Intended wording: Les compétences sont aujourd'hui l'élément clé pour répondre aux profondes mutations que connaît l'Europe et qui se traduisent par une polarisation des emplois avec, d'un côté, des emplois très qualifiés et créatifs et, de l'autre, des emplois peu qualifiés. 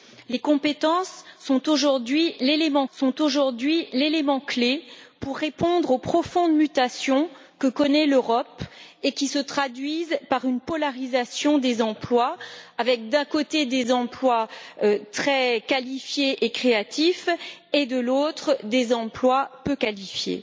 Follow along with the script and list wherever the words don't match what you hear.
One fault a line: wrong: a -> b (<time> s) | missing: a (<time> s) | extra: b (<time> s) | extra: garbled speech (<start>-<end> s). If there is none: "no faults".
extra: sont aujourd'hui l'élément (2.9 s)